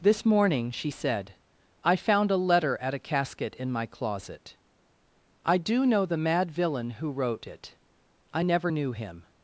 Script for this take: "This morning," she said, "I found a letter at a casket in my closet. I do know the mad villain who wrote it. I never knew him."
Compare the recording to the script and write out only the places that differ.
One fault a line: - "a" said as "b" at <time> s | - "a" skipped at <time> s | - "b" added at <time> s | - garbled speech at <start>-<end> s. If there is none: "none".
none